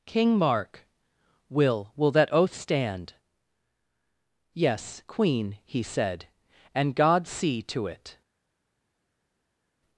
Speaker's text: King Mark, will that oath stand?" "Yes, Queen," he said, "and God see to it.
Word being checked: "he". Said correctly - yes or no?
yes